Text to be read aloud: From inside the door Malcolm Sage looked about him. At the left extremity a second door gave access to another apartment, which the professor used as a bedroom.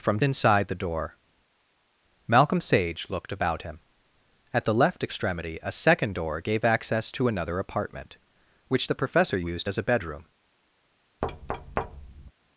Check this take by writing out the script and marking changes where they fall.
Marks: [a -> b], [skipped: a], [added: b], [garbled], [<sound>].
From inside the door Malcolm Sage looked about him. At the left extremity a second door gave access to another apartment, which the professor used as a bedroom. [thud]